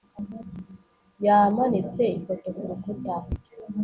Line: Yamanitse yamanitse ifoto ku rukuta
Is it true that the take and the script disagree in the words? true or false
true